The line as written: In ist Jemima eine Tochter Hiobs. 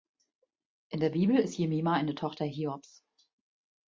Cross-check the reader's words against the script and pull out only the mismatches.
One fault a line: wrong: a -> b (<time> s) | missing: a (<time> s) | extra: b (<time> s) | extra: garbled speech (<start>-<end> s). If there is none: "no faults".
extra: der Bibel (1.0 s)